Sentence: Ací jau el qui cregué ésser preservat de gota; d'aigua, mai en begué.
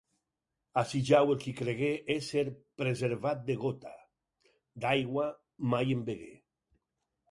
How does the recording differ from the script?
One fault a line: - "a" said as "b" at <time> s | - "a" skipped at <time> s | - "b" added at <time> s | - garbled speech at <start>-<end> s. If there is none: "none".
none